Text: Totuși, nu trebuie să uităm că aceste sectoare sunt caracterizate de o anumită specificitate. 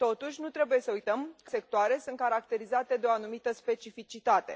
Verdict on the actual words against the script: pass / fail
fail